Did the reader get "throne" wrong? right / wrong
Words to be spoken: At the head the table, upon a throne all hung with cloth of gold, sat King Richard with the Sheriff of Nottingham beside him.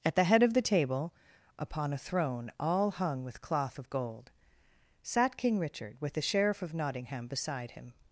right